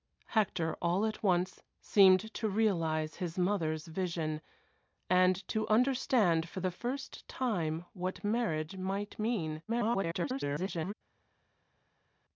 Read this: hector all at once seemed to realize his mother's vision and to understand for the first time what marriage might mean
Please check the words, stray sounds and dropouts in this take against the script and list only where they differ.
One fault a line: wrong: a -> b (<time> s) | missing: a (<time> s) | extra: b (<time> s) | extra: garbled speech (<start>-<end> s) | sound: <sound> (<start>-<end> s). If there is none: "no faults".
extra: garbled speech (9.7-10.9 s)